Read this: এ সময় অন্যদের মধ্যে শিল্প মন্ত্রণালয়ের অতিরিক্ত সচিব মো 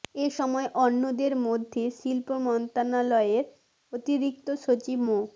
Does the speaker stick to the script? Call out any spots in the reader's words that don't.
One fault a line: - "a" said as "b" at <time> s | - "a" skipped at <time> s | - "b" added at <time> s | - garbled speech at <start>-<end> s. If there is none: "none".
none